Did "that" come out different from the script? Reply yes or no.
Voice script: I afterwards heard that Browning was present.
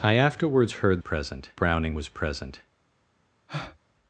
yes